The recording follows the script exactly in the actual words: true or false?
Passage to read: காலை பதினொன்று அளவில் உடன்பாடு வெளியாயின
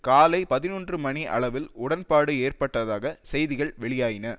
false